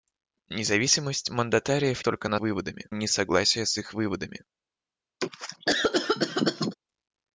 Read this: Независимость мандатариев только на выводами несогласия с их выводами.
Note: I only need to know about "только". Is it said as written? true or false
true